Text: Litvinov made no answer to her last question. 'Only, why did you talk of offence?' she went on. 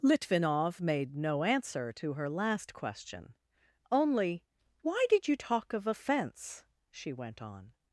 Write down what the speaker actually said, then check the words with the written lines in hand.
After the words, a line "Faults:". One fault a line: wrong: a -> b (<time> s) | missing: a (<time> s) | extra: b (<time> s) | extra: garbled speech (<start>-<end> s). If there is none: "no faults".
Litvinov made no answer to her last question. 'Only, why did you talk of offence?' she went on.
Faults:
no faults